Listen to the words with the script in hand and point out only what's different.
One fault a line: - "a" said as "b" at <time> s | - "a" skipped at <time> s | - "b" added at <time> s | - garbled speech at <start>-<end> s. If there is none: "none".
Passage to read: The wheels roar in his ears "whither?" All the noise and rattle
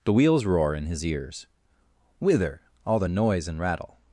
none